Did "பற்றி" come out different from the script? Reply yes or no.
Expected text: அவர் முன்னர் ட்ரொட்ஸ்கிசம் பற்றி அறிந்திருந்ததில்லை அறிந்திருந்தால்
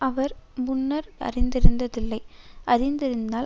yes